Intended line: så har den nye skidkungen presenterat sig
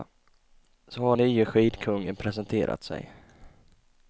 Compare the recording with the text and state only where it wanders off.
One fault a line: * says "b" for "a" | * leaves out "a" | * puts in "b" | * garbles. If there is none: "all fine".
* leaves out "den"